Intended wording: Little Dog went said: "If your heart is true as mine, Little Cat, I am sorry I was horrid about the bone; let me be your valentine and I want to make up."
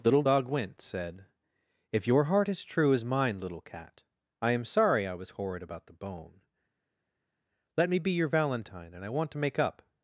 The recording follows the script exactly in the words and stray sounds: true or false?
true